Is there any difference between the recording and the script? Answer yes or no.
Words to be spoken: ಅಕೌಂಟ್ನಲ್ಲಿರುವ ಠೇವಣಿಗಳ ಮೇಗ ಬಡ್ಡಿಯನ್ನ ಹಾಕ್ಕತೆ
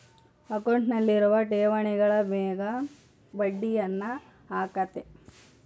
no